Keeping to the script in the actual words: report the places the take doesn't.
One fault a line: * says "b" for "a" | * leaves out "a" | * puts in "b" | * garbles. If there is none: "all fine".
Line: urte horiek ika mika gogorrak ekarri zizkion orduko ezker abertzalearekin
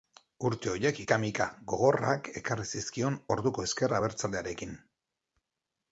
all fine